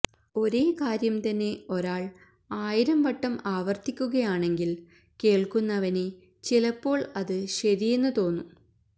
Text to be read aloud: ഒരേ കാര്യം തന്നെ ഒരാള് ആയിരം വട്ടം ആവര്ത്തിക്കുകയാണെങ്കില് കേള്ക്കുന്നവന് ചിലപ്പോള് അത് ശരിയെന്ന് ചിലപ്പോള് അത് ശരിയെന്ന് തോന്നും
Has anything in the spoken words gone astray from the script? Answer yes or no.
yes